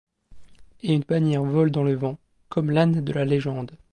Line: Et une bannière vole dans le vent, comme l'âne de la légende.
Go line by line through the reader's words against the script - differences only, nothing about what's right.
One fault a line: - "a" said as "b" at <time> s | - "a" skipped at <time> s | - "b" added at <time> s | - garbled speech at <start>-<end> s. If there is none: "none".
none